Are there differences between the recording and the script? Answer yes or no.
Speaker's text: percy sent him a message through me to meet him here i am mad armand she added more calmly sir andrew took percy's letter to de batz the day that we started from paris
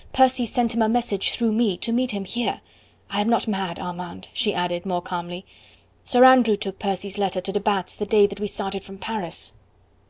yes